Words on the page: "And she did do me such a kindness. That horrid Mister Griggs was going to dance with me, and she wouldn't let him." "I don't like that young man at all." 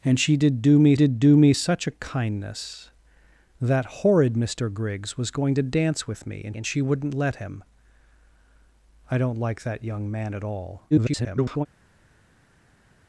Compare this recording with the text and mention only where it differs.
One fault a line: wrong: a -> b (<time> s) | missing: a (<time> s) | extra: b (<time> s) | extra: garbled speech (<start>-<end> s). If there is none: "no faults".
extra: did do me (0.9 s)
extra: and (6.5 s)
extra: garbled speech (10.9-11.7 s)